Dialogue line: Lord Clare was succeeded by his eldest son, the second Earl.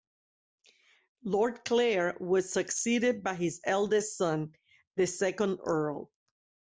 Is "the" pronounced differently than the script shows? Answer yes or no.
no